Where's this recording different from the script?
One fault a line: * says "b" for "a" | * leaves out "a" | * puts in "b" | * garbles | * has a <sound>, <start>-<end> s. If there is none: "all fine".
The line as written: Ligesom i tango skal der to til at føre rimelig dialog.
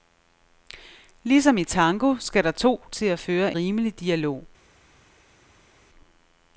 all fine